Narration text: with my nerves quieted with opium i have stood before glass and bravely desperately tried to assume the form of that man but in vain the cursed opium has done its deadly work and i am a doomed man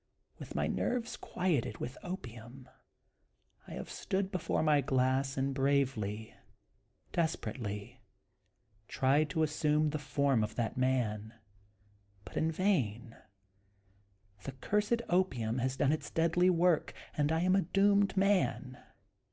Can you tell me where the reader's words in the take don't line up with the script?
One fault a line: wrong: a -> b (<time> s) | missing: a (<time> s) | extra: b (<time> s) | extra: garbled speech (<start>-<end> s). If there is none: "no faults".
extra: my (4.6 s)